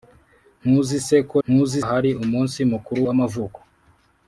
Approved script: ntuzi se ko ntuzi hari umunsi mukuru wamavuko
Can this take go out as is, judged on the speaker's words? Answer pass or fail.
pass